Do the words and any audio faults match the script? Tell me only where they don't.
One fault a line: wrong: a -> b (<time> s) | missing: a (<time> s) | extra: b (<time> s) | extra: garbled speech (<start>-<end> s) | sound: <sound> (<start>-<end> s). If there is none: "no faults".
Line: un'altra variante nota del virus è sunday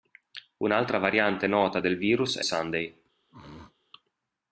sound: throat clearing (3.3-3.8 s)